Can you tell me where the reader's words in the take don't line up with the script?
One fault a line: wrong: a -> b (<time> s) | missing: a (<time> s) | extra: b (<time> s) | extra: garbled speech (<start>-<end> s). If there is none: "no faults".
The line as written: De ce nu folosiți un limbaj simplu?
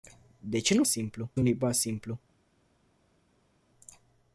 wrong: folosiți -> simplu (0.9 s)